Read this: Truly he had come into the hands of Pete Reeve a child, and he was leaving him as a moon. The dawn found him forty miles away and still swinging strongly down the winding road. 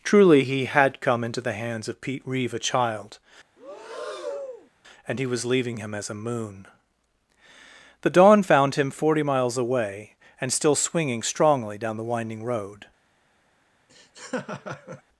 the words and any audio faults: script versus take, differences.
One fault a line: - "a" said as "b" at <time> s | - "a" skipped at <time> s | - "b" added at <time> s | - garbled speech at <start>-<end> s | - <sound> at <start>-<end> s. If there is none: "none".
- breath at 3.6-4.7 s
- laugh at 13.9-15.0 s